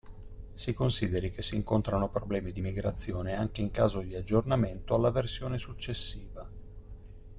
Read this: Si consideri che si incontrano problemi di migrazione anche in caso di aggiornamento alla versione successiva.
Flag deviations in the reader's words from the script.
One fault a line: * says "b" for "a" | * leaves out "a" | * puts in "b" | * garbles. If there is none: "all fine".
all fine